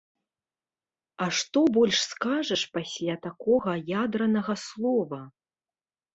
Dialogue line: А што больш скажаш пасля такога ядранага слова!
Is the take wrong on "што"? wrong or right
right